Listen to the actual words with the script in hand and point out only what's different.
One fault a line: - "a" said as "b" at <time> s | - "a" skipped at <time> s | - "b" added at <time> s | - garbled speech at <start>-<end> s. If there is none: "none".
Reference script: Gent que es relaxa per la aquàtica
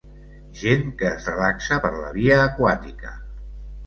- "via" added at 2.2 s